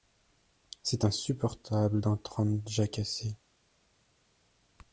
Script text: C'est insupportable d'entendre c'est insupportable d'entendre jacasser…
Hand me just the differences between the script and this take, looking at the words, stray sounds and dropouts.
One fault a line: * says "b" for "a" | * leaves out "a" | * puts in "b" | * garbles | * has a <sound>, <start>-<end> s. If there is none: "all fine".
* leaves out "c'est insupportable d'entendre"